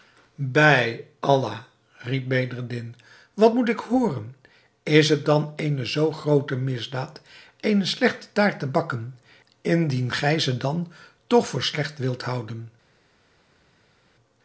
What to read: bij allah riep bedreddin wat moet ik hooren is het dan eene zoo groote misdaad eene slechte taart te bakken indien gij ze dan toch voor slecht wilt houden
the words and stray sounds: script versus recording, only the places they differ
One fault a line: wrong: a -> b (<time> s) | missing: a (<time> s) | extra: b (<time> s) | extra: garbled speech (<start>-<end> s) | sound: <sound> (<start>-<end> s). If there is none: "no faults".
no faults